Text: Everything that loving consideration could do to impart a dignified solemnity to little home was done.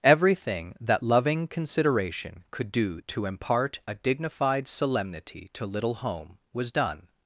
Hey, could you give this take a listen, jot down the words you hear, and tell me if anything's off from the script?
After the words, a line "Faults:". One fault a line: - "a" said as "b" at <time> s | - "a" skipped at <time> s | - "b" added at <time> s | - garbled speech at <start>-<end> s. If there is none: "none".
Everything that loving consideration could do to impart a dignified solemnity to little home was done.
Faults:
none